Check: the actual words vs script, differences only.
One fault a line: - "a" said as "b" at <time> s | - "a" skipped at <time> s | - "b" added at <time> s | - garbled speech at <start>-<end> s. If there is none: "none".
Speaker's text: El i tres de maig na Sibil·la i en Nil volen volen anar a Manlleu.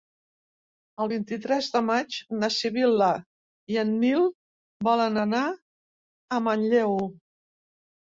- "vint" added at 1.1 s
- "volen" skipped at 5.2 s